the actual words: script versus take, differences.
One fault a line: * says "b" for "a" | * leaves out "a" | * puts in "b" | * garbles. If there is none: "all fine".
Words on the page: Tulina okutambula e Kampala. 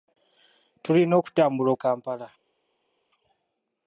all fine